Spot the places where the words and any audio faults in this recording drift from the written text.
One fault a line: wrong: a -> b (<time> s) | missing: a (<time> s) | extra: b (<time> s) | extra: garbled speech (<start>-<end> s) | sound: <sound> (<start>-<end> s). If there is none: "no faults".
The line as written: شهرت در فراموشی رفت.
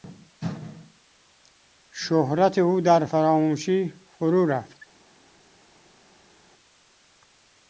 extra: او (2.6 s)
extra: فرو (4.2 s)